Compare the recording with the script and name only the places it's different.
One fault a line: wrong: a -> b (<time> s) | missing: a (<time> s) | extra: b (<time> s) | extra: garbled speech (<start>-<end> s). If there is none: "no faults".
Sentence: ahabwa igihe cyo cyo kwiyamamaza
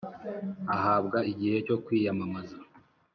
missing: cyo (1.7 s)